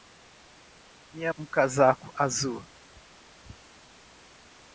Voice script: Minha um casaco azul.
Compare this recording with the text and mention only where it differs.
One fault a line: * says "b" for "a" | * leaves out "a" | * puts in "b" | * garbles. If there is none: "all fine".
all fine